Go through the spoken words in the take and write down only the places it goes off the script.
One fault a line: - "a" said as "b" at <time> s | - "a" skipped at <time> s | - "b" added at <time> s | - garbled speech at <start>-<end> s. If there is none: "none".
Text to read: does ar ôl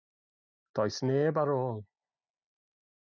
- "neb" added at 1.1 s